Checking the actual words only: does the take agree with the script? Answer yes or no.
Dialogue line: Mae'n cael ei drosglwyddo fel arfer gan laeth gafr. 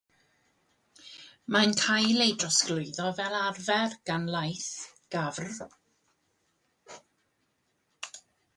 yes